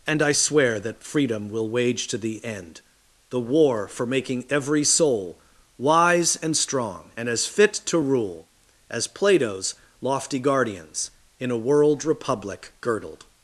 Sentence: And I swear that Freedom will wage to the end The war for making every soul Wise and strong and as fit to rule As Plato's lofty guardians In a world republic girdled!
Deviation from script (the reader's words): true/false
false